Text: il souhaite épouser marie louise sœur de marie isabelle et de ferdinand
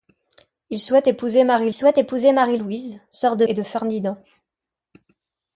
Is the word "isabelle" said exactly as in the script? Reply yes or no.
no